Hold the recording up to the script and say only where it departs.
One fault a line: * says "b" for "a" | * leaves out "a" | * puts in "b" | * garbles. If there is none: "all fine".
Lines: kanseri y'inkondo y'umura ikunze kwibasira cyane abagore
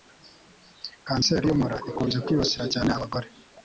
* leaves out "y'inkondo"